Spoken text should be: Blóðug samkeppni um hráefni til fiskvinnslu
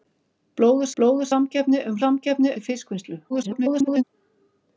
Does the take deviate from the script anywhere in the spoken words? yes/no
yes